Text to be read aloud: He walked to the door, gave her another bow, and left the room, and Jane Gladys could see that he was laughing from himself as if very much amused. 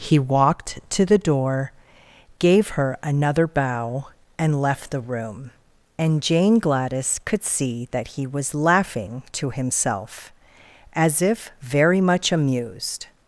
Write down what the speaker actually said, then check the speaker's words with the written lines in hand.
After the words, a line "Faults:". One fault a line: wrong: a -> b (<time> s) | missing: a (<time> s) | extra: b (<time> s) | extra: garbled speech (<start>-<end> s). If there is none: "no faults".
He walked to the door, gave her another bow, and left the room, and Jane Gladys could see that he was laughing to himself as if very much amused.
Faults:
wrong: from -> to (9.3 s)